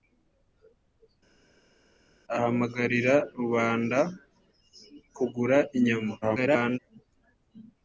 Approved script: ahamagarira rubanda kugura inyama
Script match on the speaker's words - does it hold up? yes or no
no